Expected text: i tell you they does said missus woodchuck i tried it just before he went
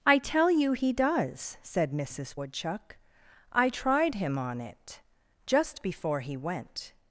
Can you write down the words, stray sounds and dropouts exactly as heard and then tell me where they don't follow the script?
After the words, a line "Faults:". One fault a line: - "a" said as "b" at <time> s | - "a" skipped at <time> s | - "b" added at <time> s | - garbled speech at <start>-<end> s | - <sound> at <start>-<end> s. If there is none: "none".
i tell you he does said missus woodchuck i tried him on it just before he went
Faults:
- "they" said as "he" at 0.7 s
- "him on" added at 4.1 s